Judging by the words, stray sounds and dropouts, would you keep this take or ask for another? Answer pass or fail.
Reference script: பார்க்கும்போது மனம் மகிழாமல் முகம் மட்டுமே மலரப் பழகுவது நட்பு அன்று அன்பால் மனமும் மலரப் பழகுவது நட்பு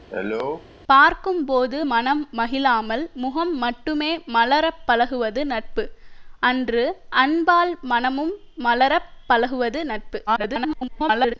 fail